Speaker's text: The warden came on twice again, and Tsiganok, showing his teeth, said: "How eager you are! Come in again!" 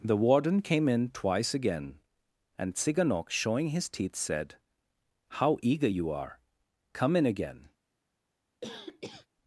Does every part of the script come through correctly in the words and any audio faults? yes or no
no